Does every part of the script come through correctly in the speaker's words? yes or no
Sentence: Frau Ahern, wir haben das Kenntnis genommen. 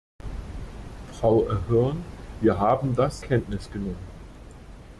yes